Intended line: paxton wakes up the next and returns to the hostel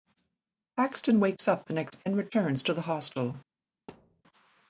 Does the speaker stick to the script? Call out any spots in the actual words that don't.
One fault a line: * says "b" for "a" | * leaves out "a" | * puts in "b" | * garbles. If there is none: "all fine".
all fine